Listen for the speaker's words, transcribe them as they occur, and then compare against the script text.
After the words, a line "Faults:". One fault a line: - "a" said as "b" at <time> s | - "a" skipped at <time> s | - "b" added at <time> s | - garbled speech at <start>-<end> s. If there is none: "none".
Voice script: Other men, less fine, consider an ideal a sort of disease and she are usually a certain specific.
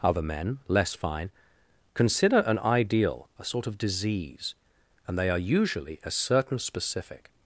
Other men, less fine, consider an ideal a sort of disease and they are usually a certain specific.
Faults:
- "she" said as "they" at 5.2 s